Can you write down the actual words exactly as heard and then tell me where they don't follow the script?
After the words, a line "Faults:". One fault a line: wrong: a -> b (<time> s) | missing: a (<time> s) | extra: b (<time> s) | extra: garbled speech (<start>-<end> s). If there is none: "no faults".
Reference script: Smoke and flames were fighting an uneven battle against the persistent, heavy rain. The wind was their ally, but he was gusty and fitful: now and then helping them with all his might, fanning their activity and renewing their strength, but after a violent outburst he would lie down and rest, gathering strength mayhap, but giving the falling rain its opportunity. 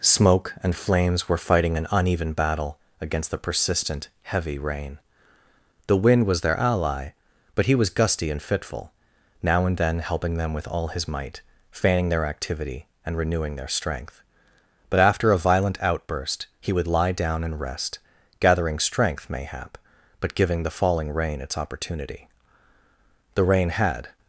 Smoke and flames were fighting an uneven battle against the persistent, heavy rain. The wind was their ally, but he was gusty and fitful: now and then helping them with all his might, fanning their activity and renewing their strength, but after a violent outburst he would lie down and rest, gathering strength mayhap, but giving the falling rain its opportunity. The rain had
Faults:
extra: The rain had (23.3 s)